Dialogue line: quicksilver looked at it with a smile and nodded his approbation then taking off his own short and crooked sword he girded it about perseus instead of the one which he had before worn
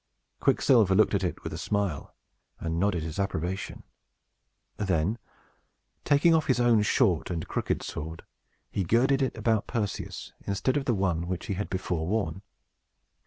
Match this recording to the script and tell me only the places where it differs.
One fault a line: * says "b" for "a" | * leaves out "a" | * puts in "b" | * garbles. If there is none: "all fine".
all fine